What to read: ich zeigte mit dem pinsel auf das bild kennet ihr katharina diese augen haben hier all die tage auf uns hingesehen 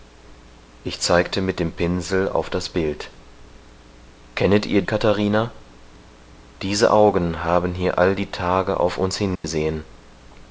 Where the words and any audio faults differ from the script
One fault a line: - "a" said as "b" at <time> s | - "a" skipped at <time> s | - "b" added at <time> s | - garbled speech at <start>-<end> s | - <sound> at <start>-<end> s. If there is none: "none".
- dropout at 9.4-9.4 s